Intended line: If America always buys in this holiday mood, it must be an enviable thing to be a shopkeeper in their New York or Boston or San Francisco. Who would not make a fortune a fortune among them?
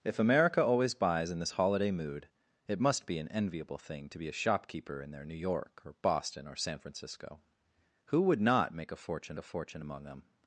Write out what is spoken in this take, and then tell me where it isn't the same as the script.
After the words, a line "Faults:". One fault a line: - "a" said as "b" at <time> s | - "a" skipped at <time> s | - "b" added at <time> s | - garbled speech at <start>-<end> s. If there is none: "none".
If America always buys in this holiday mood, it must be an enviable thing to be a shopkeeper in their New York or Boston or San Francisco. Who would not make a fortune a fortune among them?
Faults:
none